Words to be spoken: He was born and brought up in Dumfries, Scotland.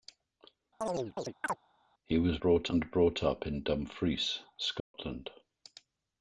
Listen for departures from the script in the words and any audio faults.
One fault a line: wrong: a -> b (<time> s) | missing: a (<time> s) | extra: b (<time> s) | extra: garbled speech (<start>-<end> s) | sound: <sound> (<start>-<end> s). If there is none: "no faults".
sound: chirp (0.8-1.6 s)
wrong: born -> brought (2.4 s)
sound: dropout (4.8-4.9 s)